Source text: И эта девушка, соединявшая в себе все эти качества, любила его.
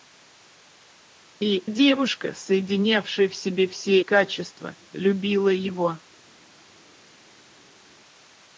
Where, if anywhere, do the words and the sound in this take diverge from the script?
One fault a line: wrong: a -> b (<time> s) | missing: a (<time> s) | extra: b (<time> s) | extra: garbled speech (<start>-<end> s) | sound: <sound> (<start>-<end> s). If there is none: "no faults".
missing: эта (1.6 s)
missing: эти (4.0 s)